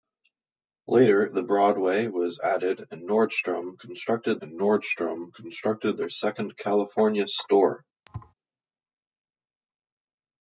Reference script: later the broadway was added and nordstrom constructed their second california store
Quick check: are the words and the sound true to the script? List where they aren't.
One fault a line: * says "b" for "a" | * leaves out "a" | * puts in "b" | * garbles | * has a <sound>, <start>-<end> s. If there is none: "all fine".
* puts in "and nordstrom constructed"
* has a thud, 8.1-8.3 s